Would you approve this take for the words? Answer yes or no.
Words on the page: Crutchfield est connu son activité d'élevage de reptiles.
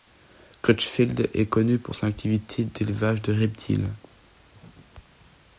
no